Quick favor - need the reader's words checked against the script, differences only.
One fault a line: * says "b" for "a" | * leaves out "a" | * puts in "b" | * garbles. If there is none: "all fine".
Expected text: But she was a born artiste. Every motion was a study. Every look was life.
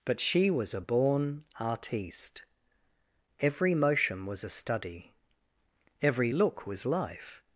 all fine